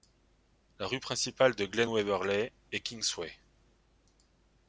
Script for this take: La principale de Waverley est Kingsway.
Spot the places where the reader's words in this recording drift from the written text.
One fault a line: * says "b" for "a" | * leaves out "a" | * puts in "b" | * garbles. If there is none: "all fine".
* puts in "rue"
* puts in "Glen"